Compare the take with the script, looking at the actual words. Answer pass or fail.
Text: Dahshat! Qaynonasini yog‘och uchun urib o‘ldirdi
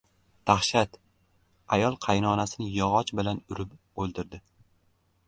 fail